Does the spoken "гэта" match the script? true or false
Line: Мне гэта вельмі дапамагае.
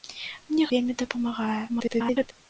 false